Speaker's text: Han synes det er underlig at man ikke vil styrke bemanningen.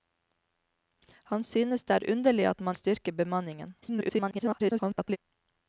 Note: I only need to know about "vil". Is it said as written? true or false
false